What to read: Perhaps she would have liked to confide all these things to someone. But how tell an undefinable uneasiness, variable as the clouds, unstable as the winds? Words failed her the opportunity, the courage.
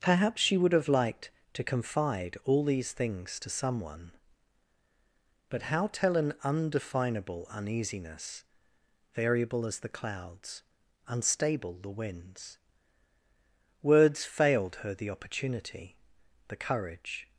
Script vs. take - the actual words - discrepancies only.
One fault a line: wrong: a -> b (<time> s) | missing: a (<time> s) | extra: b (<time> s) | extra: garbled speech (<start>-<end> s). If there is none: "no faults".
missing: as (11.8 s)